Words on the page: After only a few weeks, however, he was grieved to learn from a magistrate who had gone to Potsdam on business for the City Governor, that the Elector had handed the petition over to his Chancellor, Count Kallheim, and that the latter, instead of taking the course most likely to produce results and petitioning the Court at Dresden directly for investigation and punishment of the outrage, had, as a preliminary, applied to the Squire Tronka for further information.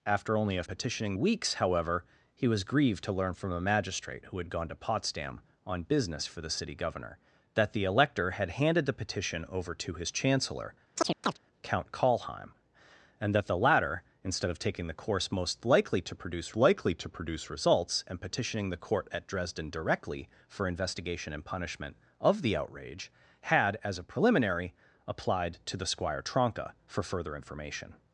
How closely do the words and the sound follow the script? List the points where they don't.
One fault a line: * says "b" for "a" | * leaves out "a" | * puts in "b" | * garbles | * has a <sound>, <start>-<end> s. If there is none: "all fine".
* says "petitioning" for "few"
* has a chirp, 11.0-11.4 s
* puts in "likely to produce"